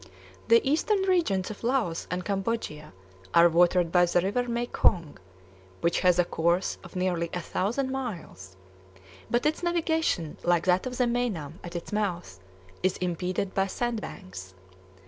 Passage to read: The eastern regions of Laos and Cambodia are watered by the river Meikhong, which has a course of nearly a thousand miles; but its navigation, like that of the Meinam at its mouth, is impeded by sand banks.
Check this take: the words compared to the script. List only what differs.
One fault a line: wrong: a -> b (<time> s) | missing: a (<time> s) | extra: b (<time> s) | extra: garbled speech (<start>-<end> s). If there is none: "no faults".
no faults